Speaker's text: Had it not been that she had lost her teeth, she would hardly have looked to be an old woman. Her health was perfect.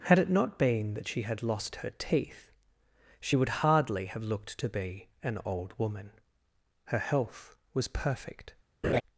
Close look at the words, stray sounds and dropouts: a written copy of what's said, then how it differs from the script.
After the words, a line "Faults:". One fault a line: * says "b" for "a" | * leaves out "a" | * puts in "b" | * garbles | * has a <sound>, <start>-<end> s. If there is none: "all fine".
Had it not been that she had lost her teeth, she would hardly have looked to be an old woman. Her health was perfect.
Faults:
* has a laugh, 8.8-9.0 s